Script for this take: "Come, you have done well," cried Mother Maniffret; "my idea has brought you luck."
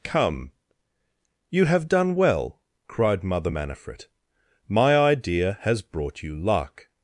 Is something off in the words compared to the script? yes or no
no